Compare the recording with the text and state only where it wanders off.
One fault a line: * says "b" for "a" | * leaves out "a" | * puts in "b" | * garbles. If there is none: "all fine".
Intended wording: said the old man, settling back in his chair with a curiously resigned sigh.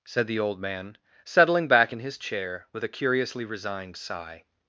all fine